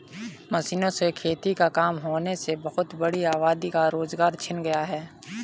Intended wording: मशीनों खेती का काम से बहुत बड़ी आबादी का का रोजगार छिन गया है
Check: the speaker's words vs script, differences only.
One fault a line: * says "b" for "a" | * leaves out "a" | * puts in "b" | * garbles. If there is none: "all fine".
* puts in "से"
* puts in "होने"
* leaves out "का"